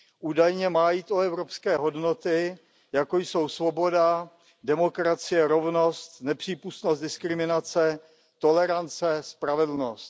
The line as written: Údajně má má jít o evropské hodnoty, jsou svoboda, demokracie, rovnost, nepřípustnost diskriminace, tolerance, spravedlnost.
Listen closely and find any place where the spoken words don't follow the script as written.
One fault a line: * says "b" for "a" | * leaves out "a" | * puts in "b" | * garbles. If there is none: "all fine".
* leaves out "má"
* puts in "jako"